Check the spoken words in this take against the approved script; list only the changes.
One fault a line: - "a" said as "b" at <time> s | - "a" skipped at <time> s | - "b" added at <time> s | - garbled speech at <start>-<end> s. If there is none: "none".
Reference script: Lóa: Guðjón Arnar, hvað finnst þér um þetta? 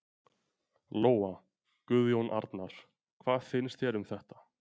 none